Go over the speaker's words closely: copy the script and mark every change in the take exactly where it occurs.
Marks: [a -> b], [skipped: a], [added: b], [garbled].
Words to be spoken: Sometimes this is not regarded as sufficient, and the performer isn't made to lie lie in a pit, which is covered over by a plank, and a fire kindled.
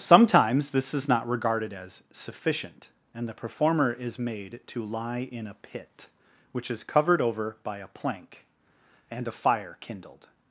Sometimes this is not regarded as sufficient, and the performer [isn't -> is] made to lie [skipped: lie] in a pit, which is covered over by a plank, and a fire kindled.